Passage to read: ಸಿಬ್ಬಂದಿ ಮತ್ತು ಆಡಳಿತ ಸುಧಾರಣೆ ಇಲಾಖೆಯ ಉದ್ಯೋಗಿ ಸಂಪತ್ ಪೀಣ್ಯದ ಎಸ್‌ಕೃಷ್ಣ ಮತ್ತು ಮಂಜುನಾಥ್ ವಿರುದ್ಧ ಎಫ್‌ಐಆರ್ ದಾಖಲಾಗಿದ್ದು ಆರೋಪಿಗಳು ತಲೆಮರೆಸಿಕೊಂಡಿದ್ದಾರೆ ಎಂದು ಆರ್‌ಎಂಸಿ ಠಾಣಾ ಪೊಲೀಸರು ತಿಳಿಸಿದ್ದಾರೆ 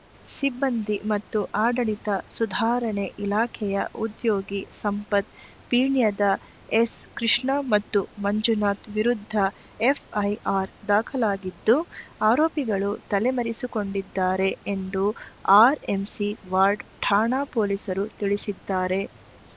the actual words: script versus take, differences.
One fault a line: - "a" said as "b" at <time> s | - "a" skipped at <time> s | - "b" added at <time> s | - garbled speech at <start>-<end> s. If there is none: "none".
- "ವಾರ್ಡ್" added at 16.5 s